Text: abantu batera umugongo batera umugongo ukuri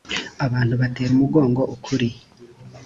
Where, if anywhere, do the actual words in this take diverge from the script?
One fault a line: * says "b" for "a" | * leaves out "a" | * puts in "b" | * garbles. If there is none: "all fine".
* leaves out "batera umugongo"